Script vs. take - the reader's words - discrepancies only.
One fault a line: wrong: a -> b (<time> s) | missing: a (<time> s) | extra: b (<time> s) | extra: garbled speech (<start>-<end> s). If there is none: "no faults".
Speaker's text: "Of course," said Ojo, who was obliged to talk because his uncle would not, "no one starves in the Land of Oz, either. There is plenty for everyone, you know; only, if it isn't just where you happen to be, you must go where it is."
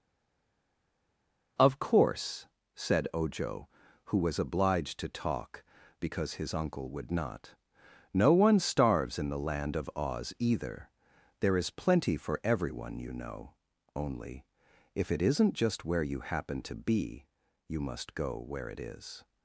no faults